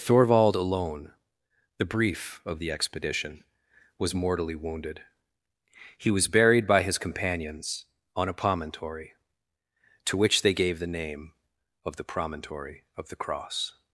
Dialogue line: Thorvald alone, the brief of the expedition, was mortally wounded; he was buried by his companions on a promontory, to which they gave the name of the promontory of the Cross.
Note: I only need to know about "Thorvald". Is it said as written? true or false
true